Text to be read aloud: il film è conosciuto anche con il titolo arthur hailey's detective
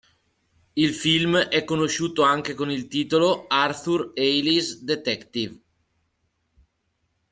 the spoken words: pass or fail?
pass